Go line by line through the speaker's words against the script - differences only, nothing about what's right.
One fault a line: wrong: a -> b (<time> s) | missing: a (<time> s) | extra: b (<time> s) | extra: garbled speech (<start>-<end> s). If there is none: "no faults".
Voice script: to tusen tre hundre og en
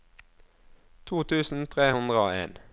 no faults